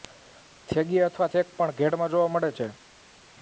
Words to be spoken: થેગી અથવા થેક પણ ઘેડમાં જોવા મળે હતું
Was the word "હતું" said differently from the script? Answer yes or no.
yes